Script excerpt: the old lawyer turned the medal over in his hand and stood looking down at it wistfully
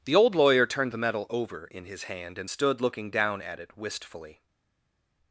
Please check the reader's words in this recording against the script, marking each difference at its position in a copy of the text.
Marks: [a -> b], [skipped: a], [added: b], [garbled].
the old lawyer turned the medal over in his hand and stood looking down at it wistfully